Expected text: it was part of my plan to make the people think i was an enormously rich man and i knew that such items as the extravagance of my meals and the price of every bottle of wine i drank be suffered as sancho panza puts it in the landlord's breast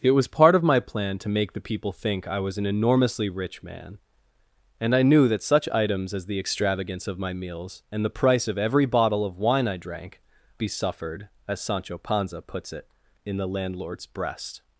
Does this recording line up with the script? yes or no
yes